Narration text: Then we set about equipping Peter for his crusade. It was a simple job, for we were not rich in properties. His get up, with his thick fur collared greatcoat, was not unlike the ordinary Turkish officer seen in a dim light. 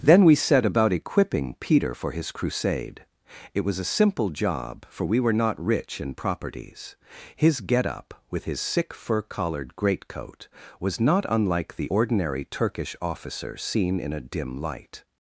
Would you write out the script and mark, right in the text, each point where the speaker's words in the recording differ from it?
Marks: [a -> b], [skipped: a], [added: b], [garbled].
Then we set about equipping Peter for his crusade. It was a simple job, for we were not rich in properties. His get up, with his [thick -> sick] fur collared greatcoat, was not unlike the ordinary Turkish officer seen in a dim light.